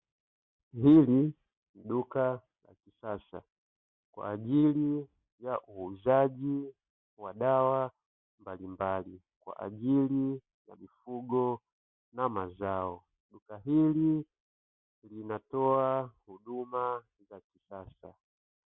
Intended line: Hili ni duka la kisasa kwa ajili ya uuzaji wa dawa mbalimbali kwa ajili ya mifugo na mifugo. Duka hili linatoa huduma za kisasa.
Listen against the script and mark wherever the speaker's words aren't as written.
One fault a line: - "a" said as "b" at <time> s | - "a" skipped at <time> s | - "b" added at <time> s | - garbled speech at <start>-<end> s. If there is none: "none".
- "mifugo" said as "mazao" at 12.3 s